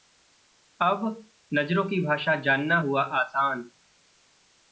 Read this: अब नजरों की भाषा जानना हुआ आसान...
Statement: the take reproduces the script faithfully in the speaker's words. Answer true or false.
true